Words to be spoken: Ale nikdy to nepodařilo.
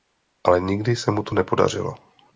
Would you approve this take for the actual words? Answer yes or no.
no